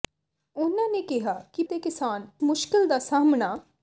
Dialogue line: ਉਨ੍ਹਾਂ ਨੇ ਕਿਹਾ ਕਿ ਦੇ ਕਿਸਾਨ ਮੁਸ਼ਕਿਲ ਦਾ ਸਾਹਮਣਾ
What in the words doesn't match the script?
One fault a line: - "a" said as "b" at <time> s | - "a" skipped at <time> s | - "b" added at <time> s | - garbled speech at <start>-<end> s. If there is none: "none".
none